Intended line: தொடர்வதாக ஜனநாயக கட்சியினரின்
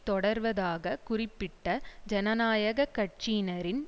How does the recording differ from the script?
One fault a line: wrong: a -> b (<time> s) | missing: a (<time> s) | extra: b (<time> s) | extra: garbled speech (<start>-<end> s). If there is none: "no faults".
extra: குறிப்பிட்ட (1.0 s)